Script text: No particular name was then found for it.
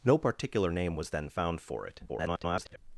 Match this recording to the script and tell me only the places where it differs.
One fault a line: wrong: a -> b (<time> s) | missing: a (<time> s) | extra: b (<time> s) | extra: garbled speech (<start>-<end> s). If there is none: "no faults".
extra: garbled speech (2.1-2.8 s)